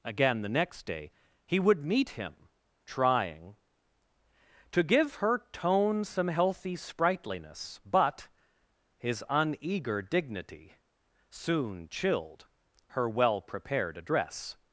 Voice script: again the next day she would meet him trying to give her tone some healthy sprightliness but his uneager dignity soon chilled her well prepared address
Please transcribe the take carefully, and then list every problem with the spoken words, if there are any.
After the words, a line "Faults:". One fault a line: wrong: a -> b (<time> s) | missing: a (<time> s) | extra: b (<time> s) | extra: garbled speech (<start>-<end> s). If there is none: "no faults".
again the next day he would meet him trying to give her tone some healthy sprightliness but his uneager dignity soon chilled her well prepared address
Faults:
wrong: she -> he (1.4 s)